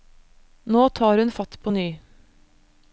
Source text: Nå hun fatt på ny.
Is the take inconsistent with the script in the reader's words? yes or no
yes